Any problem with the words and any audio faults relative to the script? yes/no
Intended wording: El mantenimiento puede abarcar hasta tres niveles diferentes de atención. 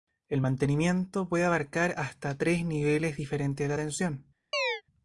yes